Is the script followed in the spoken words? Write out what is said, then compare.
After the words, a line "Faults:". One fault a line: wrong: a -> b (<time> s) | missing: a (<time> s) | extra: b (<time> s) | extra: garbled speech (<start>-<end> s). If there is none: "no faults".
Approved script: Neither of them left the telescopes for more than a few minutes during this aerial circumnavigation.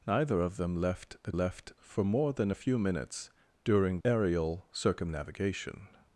Neither of them left the left for more than a few minutes during aerial circumnavigation.
Faults:
wrong: telescopes -> left (1.3 s)
missing: this (4.0 s)